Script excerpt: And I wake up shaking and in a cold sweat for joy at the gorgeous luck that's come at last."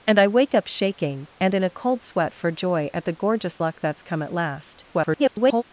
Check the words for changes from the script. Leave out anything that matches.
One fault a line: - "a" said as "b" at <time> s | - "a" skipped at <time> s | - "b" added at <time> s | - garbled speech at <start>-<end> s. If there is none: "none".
- garbled speech at 4.9-5.6 s